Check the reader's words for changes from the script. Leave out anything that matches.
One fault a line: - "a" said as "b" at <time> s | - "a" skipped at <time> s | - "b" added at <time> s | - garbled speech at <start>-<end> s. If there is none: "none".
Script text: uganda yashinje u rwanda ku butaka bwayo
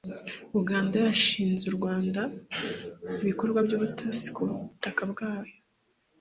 - "ibikorwa by'ubutasi" added at 3.2 s